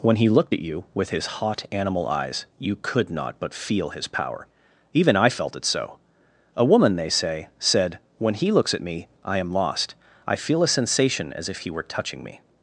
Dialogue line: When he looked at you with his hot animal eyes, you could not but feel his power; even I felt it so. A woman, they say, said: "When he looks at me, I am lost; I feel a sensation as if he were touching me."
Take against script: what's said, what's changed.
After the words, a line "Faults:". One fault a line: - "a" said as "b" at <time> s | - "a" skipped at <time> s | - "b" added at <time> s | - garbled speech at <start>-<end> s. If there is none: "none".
When he looked at you with his hot animal eyes, you could not but feel his power; even I felt it so. A woman, they say, said: "When he looks at me, I am lost; I feel a sensation as if he were touching me."
Faults:
none